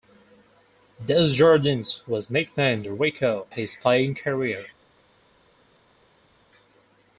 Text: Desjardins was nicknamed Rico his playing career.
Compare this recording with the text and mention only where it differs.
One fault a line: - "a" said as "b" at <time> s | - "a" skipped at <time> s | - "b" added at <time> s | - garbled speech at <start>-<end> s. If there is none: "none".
none